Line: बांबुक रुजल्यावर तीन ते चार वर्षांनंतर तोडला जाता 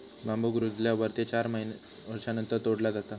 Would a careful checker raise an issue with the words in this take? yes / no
yes